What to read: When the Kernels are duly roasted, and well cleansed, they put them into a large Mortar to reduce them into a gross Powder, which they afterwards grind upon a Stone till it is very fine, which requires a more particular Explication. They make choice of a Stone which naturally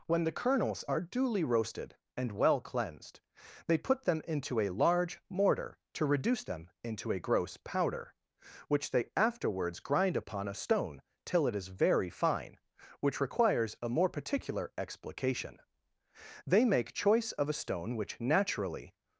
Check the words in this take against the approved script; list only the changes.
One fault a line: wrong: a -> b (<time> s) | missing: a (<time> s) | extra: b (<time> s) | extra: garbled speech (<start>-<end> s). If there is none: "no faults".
no faults